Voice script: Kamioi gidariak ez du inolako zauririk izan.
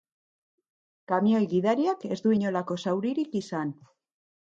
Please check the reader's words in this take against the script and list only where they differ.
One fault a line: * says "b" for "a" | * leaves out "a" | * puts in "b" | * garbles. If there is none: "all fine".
all fine